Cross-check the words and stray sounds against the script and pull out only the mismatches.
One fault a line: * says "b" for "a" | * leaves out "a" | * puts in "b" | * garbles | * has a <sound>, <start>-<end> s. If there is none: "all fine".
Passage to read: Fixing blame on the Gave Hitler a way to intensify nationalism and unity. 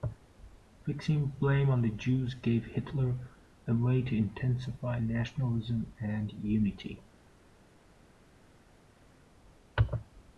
* puts in "Jews"